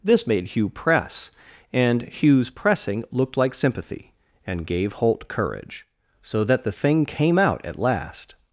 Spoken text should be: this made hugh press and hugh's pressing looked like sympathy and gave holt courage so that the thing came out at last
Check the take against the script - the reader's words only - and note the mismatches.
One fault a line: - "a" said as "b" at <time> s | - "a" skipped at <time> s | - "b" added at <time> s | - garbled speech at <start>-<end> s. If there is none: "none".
none